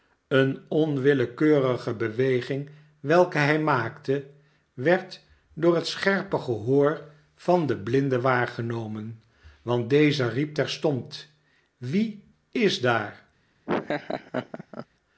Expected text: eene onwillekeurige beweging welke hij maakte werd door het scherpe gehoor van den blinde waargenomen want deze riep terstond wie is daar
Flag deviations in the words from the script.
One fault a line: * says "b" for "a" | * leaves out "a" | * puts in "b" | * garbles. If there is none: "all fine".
all fine